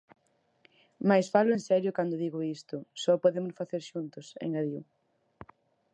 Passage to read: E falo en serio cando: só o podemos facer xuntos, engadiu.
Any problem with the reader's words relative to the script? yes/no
yes